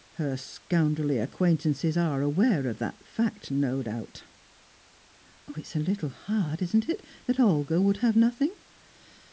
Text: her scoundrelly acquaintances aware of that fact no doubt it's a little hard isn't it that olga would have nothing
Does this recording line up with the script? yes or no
no